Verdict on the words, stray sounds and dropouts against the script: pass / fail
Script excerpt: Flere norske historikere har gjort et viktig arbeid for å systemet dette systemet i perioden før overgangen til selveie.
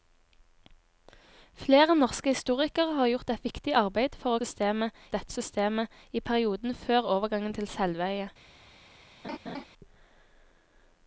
fail